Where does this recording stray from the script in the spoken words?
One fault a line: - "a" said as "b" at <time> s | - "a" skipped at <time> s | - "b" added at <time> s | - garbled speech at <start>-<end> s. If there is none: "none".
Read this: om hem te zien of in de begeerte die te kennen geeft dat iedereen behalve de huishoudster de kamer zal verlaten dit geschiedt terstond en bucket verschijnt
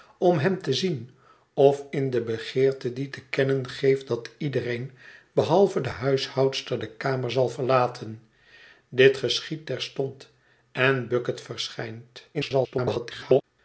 - garbled speech at 12.3-13.4 s